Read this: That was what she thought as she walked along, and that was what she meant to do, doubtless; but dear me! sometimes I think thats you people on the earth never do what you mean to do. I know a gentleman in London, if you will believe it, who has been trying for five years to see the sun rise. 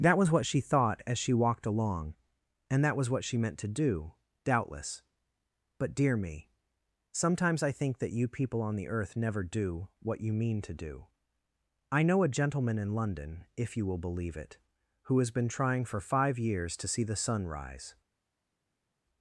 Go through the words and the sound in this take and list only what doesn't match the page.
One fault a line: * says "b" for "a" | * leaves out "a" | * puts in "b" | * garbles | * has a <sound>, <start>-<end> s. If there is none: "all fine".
* says "that" for "thats"